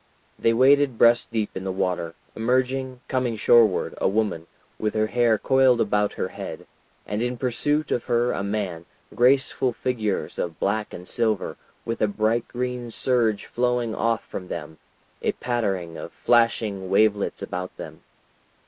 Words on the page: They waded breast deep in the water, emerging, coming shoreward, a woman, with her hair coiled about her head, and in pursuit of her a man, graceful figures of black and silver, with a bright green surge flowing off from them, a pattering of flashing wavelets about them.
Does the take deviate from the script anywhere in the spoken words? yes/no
no